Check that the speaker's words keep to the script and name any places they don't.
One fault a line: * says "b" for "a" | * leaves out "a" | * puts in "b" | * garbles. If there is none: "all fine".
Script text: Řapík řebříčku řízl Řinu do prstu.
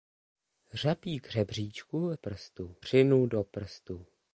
* says "prstu" for "řízl"